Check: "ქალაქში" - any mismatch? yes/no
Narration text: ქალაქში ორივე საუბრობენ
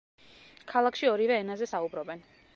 no